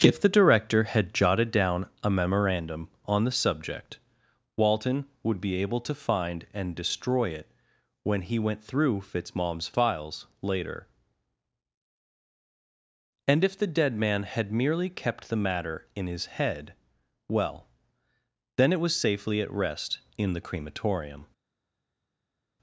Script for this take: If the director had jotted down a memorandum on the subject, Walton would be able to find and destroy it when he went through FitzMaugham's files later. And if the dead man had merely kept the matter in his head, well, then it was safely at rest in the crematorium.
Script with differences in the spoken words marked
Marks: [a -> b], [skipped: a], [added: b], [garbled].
If the director had jotted down a memorandum on the subject, Walton would be able to find and destroy it when he went through FitzMaugham's files later. And if the dead man had merely kept the matter in his head, well, then it was safely at rest in the crematorium.